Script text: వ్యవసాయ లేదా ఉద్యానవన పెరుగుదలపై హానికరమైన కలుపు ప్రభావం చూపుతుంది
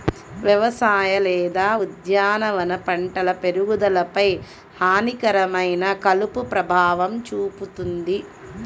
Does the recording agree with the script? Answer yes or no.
no